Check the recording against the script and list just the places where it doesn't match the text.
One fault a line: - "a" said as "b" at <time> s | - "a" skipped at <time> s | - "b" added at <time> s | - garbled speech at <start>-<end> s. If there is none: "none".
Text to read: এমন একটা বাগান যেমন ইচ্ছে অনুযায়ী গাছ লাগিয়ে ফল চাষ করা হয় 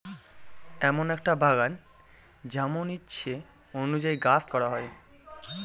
- "লাগিয়ে ফল চাষ" skipped at 4.4 s